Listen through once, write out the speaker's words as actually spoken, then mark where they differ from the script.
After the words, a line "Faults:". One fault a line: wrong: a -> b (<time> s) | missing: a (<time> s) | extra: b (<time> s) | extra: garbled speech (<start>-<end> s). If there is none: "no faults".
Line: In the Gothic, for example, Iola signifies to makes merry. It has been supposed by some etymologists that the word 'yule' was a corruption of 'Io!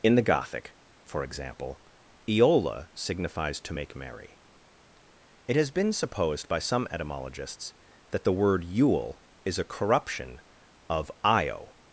In the Gothic, for example, Iola signifies to make merry. It has been supposed by some etymologists that the word 'yule' is a corruption of 'Io!
Faults:
wrong: makes -> make (3.7 s)
wrong: was -> is (9.4 s)